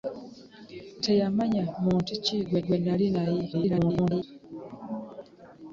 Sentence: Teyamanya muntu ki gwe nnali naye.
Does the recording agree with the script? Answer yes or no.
no